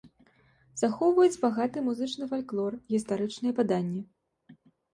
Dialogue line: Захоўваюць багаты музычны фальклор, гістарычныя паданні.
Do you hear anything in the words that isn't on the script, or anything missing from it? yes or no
no